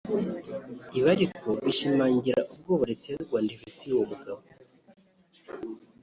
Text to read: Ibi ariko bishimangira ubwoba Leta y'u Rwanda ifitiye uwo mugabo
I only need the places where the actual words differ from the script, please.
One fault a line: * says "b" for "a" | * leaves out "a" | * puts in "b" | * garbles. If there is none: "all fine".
all fine